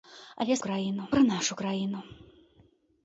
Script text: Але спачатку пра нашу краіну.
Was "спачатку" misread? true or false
true